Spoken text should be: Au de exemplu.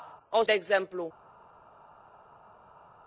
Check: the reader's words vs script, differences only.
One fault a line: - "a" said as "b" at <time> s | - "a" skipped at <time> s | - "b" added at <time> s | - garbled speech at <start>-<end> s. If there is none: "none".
none